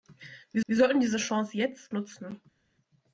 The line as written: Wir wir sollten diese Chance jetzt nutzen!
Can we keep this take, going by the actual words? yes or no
yes